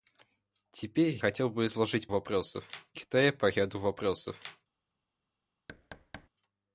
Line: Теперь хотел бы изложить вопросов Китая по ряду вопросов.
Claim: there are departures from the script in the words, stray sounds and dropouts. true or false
true